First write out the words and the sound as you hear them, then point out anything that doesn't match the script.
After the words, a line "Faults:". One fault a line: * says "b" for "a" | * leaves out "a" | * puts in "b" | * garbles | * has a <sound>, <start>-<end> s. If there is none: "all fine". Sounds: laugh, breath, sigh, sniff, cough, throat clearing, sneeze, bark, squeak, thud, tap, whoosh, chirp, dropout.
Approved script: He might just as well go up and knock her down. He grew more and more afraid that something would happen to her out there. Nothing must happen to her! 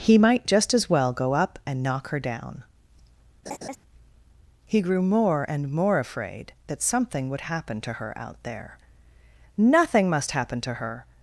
He might just as well go up and knock her down. He grew more and more afraid that something would happen to her out there. Nothing must happen to her!
Faults:
* has a laugh, 3.5-3.8 s